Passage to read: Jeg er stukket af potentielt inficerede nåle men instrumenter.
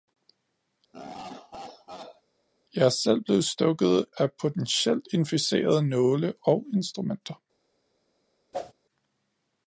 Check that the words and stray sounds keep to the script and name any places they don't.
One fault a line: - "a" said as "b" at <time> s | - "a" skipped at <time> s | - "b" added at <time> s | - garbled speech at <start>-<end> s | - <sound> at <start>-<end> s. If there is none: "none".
- laugh at 0.9-2.2 s
- "selv blevet" added at 2.9 s
- "men" said as "og" at 6.4 s
- whoosh at 8.5-8.7 s